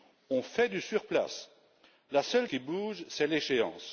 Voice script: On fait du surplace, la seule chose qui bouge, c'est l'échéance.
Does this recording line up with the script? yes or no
no